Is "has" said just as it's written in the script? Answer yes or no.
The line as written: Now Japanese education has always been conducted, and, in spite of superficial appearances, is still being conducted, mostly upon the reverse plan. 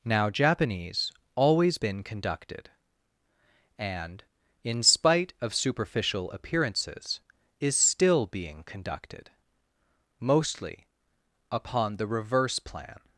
no